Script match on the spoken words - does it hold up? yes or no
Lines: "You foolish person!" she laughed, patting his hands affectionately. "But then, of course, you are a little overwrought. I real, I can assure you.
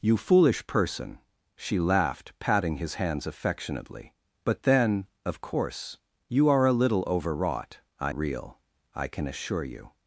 yes